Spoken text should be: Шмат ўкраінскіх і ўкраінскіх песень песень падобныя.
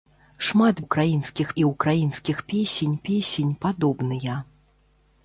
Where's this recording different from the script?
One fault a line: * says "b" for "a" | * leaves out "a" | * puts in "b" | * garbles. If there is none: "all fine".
all fine